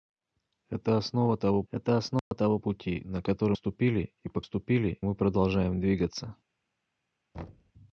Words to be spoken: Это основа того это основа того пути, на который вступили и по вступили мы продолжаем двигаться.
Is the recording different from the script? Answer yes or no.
no